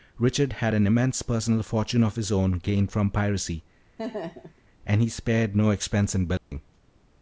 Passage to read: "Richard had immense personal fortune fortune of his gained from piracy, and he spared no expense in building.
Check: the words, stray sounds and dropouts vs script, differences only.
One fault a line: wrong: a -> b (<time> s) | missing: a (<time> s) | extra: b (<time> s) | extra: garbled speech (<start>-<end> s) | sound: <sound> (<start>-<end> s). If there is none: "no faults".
extra: an (0.7 s)
missing: fortune (2.0 s)
extra: own (2.3 s)
sound: laugh (4.0-4.6 s)
sound: dropout (6.4-6.5 s)